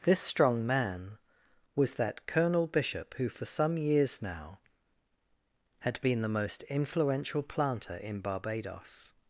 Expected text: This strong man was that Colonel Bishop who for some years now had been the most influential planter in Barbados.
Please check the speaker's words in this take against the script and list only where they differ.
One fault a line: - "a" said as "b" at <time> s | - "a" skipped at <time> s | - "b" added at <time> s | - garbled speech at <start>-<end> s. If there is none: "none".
none